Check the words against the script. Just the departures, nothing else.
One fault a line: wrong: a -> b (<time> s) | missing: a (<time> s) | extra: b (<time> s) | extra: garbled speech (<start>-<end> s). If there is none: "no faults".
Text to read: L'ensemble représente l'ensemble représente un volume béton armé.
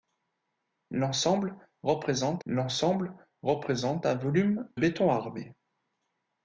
no faults